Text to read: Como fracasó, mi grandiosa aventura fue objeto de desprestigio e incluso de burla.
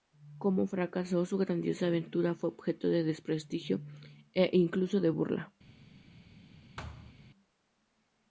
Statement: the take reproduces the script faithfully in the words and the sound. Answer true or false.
false